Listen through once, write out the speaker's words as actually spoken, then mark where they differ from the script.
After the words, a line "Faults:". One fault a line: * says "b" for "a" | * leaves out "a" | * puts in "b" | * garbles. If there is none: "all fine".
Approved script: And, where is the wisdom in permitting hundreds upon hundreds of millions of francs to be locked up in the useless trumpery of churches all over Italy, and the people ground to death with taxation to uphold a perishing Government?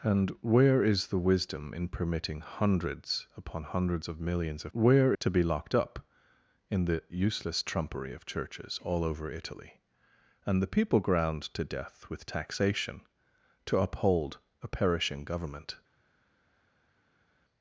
And, where is the wisdom in permitting hundreds upon hundreds of millions of where to be locked up in the useless trumpery of churches all over Italy, and the people ground to death with taxation to uphold a perishing Government?
Faults:
* says "where" for "francs"